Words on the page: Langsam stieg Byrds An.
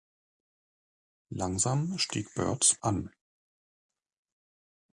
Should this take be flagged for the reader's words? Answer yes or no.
no